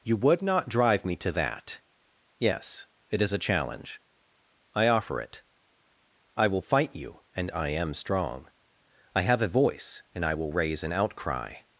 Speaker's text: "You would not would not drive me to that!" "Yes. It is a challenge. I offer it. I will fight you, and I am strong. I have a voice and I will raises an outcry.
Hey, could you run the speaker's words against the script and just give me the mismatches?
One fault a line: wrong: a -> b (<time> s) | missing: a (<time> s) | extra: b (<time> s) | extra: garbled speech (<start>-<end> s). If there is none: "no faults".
missing: would not (0.7 s)
wrong: raises -> raise (10.5 s)